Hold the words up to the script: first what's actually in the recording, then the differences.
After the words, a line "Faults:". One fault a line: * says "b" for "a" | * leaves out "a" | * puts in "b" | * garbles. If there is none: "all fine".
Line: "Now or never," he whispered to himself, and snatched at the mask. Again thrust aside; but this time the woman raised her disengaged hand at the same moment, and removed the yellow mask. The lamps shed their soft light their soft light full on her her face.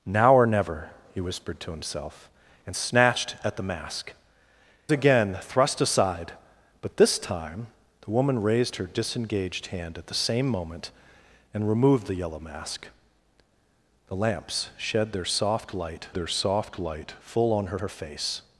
"Now or never," he whispered to himself, and snatched at the mask. Again thrust aside; but this time the woman raised her disengaged hand at the same moment, and removed the yellow mask. The lamps shed their soft light their soft light full on her her face.
Faults:
all fine